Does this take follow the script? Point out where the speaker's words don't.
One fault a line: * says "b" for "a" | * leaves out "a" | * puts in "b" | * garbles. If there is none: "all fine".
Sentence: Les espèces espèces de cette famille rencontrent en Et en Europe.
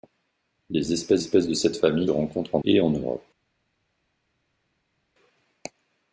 all fine